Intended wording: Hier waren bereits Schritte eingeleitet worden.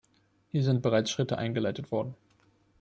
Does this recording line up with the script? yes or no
no